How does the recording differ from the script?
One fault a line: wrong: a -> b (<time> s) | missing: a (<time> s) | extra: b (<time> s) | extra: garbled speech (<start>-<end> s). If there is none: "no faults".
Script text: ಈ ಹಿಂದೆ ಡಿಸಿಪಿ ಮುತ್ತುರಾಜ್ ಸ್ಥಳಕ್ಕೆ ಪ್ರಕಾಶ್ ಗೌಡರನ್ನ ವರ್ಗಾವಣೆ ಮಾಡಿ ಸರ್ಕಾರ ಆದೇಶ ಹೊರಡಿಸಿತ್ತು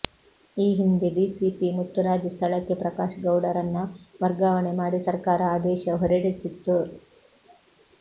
no faults